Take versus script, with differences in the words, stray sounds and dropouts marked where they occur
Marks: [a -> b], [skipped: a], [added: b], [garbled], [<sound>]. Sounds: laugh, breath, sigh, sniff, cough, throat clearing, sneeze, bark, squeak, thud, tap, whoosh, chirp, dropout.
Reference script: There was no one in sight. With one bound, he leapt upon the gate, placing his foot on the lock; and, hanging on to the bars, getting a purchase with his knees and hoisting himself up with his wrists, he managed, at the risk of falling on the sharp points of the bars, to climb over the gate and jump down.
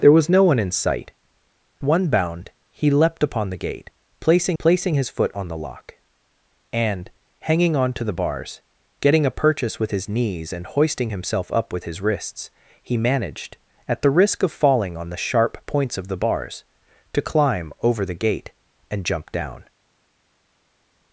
There was no one in sight. [skipped: With] one bound, he leapt upon the gate, placing [added: placing] his foot on the lock; and, hanging on to the bars, getting a purchase with his knees and hoisting himself up with his wrists, he managed, at the risk of falling on the sharp points of the bars, to climb over the gate and jump down.